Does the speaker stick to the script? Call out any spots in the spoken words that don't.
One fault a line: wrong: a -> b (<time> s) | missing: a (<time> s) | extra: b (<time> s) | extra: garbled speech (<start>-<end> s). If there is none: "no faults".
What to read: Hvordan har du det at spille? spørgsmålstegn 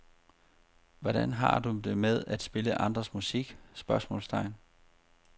extra: med (2.0 s)
extra: andres musik (2.8 s)